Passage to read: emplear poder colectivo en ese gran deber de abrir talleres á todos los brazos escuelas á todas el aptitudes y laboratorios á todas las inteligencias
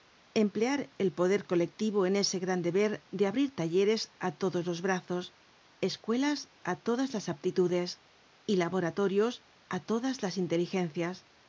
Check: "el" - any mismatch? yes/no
yes